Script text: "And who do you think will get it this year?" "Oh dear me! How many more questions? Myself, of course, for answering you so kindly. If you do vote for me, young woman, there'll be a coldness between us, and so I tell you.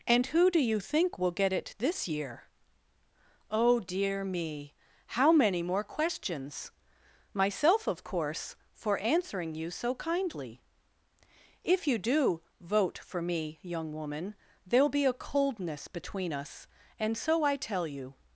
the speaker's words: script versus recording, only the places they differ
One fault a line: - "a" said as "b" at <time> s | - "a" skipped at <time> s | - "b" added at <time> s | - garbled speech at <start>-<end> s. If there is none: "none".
none